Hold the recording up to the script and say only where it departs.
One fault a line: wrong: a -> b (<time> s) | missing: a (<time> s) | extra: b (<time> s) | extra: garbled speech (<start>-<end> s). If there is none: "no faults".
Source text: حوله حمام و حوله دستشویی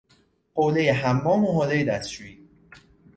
no faults